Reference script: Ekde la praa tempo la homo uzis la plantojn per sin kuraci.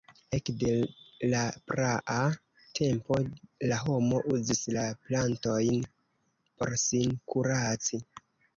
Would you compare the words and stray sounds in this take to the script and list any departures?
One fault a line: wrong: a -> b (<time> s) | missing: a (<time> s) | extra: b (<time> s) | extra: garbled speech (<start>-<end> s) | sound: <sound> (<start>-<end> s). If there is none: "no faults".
wrong: per -> por (6.6 s)